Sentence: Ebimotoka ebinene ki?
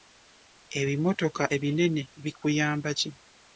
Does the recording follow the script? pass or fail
fail